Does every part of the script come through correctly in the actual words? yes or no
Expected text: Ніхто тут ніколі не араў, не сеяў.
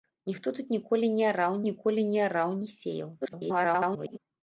no